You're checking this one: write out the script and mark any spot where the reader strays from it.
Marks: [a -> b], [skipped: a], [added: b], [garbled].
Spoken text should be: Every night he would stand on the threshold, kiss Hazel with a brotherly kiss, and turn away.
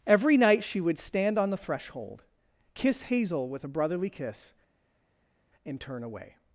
Every night [he -> she] would stand on the threshold, kiss Hazel with a brotherly kiss, and turn away.